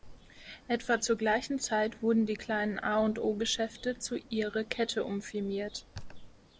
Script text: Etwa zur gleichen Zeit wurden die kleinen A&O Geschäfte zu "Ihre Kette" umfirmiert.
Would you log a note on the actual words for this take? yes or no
no